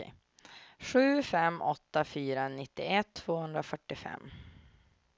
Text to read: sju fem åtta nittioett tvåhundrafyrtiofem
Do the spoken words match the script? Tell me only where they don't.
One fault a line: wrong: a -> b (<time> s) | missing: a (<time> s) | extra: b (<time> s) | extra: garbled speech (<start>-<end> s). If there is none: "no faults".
extra: fyra (2.0 s)